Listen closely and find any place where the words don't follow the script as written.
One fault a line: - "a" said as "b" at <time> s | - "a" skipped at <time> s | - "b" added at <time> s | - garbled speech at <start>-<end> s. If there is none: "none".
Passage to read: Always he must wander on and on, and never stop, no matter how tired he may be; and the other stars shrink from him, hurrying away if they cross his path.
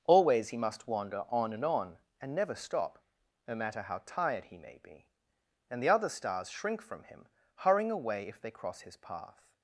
none